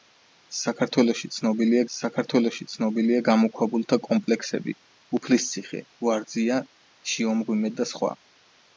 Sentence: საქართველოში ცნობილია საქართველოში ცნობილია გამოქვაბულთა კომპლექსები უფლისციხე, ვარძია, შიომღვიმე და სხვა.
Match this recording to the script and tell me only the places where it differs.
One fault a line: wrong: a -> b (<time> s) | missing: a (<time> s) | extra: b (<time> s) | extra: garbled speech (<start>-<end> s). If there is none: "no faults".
no faults